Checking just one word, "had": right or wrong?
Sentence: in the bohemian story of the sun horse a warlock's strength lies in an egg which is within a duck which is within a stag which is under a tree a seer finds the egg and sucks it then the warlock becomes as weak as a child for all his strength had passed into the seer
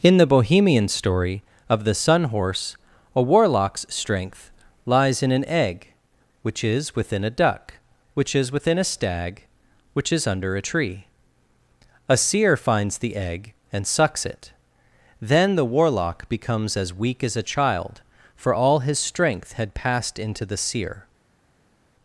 right